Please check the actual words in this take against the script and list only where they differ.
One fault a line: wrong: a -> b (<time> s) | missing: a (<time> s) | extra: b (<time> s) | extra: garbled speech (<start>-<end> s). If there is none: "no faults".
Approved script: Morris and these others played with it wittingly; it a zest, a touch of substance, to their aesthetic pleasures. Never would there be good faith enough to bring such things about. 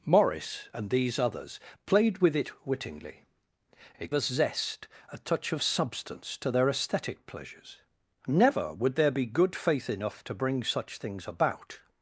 no faults